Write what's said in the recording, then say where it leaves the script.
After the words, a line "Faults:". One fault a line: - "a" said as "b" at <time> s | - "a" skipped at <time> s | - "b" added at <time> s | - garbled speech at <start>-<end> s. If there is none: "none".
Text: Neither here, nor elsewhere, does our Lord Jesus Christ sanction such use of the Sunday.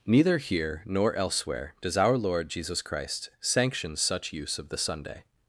Neither here, nor elsewhere, does our Lord Jesus Christ sanction such use of the Sunday.
Faults:
none